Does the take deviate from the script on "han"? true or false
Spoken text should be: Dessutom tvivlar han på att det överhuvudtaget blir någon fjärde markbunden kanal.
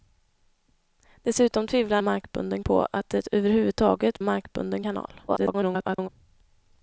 true